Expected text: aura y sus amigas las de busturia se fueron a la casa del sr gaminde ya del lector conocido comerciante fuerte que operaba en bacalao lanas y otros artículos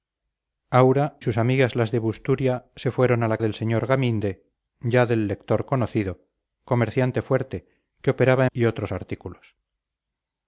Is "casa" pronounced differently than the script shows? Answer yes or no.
yes